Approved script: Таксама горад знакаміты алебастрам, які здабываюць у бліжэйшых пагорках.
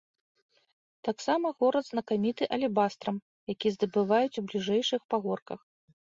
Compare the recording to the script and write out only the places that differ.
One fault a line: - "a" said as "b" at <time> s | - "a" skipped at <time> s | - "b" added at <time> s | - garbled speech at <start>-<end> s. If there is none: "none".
none